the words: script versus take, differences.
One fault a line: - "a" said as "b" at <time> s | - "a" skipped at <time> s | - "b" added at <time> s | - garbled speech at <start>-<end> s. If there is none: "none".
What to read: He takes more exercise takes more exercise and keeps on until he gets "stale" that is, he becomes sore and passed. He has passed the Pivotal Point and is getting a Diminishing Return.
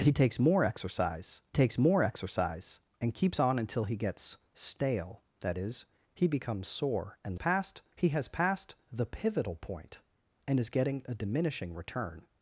none